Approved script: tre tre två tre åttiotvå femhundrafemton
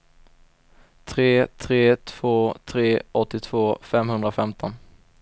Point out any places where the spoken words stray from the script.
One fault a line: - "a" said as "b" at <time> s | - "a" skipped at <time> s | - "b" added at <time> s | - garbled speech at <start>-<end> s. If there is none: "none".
none